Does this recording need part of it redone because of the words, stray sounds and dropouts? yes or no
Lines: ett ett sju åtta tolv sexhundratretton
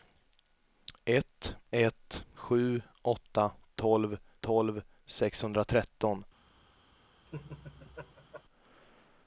yes